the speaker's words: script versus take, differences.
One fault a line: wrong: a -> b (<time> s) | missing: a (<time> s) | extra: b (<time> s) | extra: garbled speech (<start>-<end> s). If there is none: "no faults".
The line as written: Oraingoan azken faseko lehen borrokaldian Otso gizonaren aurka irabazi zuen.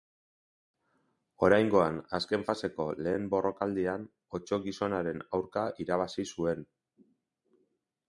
no faults